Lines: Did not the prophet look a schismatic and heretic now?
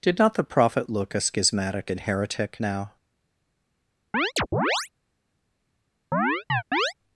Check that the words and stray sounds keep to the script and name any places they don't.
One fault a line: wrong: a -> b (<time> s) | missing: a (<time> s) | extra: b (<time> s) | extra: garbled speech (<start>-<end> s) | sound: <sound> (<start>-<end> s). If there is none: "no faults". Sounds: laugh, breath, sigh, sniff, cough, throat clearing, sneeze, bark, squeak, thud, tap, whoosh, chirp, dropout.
sound: chirp (4.1-4.9 s)
sound: chirp (6.1-6.9 s)